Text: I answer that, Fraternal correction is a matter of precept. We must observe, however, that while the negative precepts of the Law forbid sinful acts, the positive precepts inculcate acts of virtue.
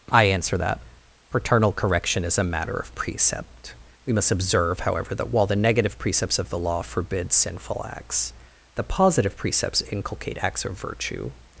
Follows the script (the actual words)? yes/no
yes